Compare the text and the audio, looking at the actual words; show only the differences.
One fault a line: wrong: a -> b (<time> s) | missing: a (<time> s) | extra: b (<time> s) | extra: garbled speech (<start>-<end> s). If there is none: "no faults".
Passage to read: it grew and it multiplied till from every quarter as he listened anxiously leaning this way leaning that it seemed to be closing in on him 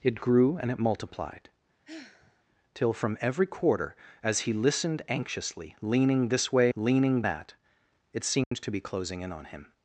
no faults